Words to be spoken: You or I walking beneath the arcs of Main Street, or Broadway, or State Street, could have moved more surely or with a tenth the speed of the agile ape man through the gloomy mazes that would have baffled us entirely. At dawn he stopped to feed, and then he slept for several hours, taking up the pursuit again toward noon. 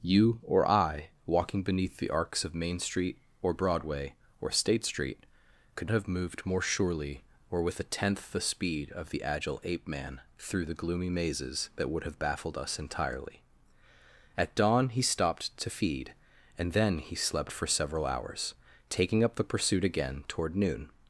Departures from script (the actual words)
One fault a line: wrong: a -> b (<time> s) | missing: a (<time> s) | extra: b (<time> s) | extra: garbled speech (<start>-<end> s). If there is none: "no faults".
no faults